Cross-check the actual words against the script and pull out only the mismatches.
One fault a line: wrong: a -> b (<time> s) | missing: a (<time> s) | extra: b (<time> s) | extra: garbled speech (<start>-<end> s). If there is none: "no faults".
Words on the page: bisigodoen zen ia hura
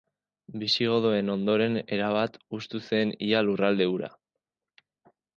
extra: ondoren erabat hustu (1.3 s)
extra: lurralde (3.5 s)